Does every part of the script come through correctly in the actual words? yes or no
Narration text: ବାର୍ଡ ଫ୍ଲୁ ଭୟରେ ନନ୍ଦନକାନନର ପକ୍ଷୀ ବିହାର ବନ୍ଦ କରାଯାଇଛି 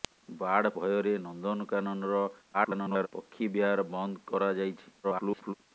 no